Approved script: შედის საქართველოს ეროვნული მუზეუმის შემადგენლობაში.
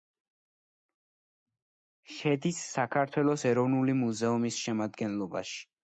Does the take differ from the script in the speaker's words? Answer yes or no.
no